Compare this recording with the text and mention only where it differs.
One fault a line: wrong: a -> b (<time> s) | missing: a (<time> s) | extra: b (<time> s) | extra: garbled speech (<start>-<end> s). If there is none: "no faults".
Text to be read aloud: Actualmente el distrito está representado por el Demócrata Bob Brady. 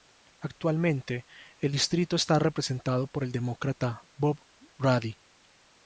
no faults